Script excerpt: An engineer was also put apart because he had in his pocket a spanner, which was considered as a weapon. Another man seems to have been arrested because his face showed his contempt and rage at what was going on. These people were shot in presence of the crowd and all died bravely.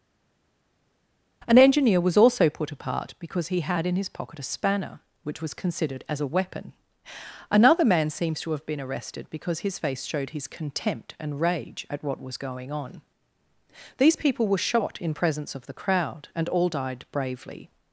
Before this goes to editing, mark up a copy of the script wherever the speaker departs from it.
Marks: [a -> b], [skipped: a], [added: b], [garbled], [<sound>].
An engineer was also put apart because he had in his pocket a spanner, which was considered as a weapon. Another man seems to have been arrested because his face showed his contempt and rage at what was going on. These people were shot in presence of the crowd and all died bravely.